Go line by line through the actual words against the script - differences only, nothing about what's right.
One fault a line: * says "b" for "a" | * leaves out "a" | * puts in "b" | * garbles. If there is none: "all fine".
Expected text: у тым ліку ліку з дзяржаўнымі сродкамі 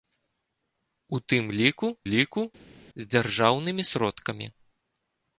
all fine